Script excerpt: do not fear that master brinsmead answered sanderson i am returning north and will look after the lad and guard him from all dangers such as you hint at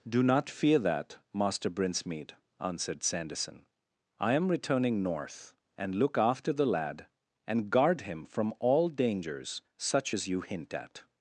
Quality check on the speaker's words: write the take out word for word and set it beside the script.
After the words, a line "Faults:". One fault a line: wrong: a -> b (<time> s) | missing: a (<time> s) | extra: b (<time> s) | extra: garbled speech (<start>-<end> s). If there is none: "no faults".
do not fear that master brinsmead answered sanderson i am returning north and look after the lad and guard him from all dangers such as you hint at
Faults:
missing: will (6.0 s)